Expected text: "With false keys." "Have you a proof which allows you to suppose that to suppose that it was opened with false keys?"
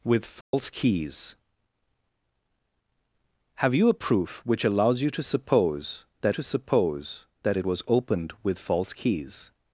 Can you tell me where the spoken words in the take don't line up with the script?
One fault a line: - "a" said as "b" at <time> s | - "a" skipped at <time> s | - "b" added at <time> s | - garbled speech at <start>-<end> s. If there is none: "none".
none